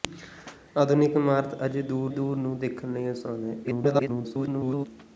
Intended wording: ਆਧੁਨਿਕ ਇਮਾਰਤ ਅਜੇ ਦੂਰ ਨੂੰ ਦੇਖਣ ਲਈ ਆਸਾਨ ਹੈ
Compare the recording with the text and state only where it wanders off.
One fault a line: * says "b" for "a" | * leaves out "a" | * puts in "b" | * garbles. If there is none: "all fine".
* puts in "ਦੂਰ"
* garbles